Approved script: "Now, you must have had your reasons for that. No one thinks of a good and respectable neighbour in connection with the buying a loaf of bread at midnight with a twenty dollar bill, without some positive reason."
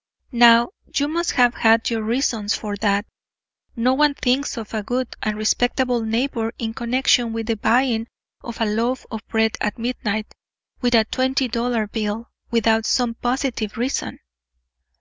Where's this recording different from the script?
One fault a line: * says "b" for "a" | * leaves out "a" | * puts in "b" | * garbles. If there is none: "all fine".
* puts in "of"